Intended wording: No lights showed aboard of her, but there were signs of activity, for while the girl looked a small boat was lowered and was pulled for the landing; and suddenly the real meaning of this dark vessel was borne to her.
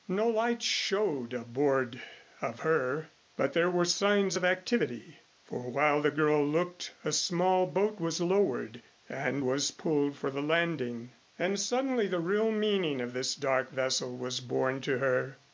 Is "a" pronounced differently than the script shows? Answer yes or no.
no